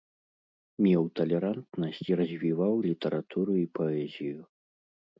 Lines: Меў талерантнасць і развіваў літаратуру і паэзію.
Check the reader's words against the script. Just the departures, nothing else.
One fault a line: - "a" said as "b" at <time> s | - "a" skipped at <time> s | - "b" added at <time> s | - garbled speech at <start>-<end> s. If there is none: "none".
none